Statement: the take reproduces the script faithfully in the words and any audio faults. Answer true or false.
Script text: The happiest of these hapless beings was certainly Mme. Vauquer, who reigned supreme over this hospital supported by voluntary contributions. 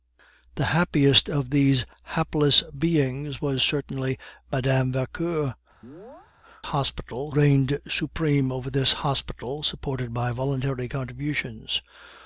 false